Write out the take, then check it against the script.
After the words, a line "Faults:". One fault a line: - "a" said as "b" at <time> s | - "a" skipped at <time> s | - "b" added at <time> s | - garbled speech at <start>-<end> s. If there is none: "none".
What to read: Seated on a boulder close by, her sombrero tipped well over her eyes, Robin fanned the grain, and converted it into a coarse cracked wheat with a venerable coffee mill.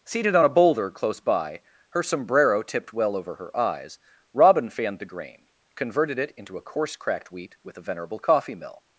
Seated on a boulder close by, her sombrero tipped well over her eyes, Robin fanned the grain, converted it into a coarse cracked wheat with a venerable coffee mill.
Faults:
- "and" skipped at 5.5 s